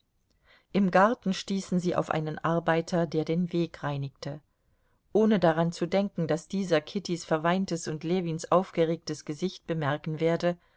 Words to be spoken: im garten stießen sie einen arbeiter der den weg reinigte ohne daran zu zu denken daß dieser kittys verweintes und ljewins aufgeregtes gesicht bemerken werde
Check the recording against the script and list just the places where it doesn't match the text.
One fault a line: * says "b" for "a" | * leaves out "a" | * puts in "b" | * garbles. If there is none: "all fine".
* puts in "auf"
* leaves out "zu"